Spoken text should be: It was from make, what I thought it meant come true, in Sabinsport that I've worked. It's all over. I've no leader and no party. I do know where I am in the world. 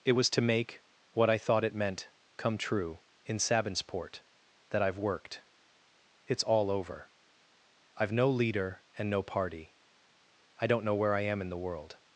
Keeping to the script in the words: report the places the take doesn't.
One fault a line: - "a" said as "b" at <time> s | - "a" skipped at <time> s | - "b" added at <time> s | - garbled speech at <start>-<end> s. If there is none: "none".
- "from" said as "to" at 0.3 s
- "do" said as "don't" at 10.7 s